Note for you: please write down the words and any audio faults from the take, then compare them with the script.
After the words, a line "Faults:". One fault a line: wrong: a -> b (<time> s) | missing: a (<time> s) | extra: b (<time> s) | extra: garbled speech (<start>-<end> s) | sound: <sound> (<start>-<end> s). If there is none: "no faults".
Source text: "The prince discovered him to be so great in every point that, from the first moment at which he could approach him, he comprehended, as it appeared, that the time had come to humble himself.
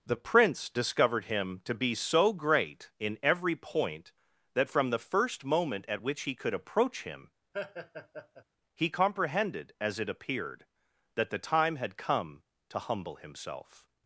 "The prince discovered him to be so great in every point that, from the first moment at which he could approach him, he comprehended, as it appeared, that the time had come to humble himself.
Faults:
sound: laugh (7.5-8.4 s)